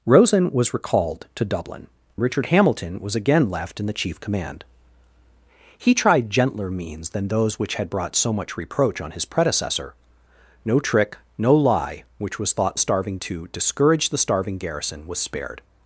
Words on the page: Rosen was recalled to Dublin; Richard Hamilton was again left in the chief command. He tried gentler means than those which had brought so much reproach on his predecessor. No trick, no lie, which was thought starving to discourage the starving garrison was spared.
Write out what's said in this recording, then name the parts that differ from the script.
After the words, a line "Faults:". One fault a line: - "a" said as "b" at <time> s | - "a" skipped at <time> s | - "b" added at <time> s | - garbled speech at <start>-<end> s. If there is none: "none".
Rosen was recalled to Dublin; Richard Hamilton was again left in the chief command. He tried gentler means than those which had brought so much reproach on his predecessor. No trick, no lie, which was thought starving to discourage the starving garrison was spared.
Faults:
none